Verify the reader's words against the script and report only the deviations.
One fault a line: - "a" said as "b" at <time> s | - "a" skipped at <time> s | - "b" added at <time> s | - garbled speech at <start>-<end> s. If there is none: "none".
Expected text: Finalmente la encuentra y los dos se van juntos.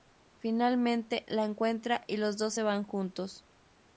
none